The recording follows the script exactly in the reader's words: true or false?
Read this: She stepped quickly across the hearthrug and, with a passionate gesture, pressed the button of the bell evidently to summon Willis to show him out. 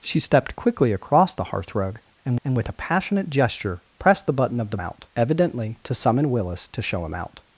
false